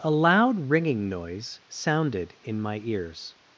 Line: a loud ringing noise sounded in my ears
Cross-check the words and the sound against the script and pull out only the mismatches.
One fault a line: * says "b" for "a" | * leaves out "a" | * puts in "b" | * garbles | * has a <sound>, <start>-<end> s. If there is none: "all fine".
all fine